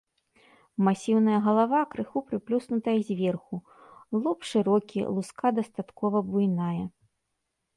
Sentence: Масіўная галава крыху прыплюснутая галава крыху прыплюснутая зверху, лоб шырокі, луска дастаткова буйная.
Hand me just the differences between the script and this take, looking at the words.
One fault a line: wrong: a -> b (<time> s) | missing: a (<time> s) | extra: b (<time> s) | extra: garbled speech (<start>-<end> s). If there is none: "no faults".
missing: галава крыху прыплюснутая (3.0 s)